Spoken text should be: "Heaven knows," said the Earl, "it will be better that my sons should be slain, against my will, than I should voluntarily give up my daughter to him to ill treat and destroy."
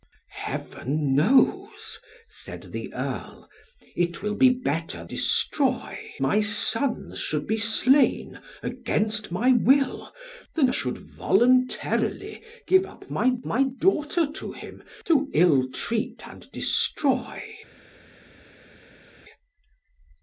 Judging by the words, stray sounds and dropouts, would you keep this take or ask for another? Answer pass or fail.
fail